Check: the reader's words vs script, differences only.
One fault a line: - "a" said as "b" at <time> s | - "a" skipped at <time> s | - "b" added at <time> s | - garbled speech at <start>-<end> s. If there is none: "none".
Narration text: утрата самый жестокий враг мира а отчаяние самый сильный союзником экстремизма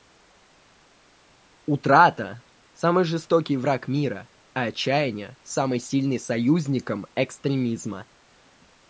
none